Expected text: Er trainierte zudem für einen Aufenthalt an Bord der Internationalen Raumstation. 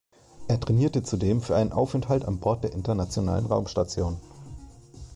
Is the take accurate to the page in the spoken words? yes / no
yes